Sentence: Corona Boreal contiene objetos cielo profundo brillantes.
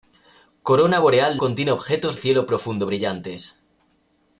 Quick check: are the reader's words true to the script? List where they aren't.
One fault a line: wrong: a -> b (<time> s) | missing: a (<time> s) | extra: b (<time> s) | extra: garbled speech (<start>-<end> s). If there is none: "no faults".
no faults